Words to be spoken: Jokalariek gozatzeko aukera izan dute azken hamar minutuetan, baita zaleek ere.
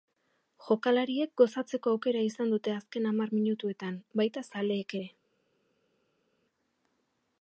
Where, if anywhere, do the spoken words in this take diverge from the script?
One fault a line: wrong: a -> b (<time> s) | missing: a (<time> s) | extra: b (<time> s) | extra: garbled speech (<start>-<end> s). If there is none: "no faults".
no faults